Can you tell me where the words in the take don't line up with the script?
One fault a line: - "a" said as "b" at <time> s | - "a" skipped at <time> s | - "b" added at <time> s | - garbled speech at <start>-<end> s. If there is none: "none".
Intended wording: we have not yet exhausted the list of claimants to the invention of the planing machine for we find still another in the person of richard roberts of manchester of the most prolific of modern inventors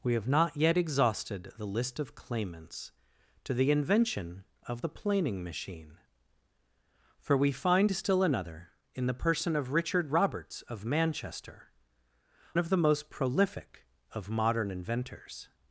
none